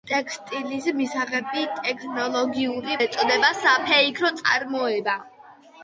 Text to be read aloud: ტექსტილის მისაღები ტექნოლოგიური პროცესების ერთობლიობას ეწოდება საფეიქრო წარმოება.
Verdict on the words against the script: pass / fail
fail